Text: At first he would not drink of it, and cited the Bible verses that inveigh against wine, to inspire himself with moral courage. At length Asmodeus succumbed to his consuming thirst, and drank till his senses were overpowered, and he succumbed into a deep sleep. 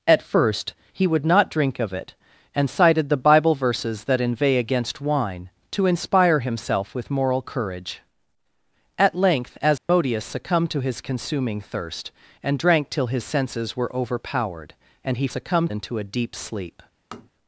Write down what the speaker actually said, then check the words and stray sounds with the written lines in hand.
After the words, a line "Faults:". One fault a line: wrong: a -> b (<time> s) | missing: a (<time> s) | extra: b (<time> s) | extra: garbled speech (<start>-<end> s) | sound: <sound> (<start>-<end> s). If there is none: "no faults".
At first he would not drink of it, and cited the Bible verses that inveigh against wine, to inspire himself with moral courage. At length Asmodeus succumbed to his consuming thirst, and drank till his senses were overpowered, and he succumbed into a deep sleep.
Faults:
sound: dropout (9.8-9.9 s)
sound: tap (17.1-17.3 s)